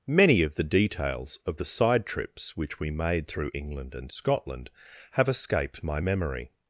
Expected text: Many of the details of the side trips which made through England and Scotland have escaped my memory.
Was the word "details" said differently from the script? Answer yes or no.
no